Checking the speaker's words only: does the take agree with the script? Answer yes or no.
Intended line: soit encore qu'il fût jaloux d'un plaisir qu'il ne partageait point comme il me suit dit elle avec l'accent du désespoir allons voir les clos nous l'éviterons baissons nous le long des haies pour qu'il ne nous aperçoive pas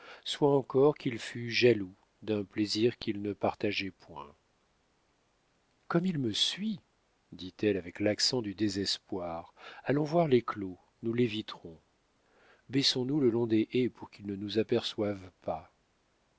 yes